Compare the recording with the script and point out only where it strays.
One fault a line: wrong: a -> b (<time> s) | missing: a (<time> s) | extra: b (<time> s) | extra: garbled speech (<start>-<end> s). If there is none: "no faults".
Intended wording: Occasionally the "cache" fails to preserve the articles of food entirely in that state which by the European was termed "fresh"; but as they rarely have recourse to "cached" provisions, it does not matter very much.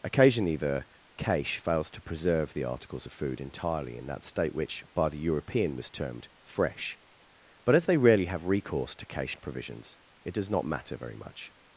no faults